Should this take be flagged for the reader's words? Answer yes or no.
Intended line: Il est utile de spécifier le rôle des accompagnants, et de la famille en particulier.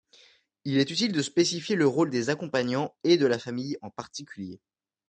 no